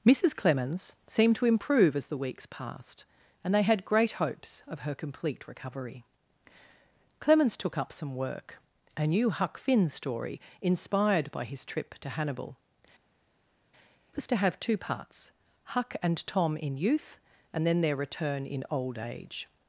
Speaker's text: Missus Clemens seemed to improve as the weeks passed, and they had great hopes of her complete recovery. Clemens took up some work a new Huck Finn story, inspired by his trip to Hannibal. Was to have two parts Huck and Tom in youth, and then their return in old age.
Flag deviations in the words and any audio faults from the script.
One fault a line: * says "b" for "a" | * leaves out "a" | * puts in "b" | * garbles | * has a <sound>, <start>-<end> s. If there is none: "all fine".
all fine